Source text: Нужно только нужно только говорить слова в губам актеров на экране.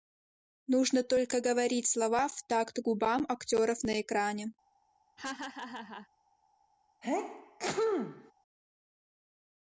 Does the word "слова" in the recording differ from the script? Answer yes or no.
no